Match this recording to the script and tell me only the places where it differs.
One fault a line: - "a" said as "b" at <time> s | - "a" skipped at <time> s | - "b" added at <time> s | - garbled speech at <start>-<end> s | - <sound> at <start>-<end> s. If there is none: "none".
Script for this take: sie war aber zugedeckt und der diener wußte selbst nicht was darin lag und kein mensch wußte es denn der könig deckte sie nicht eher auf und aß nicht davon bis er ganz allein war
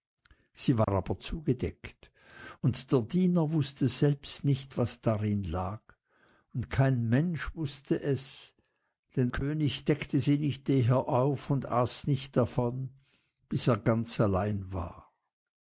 - dropout at 0.8-0.9 s
- "der" skipped at 9.3 s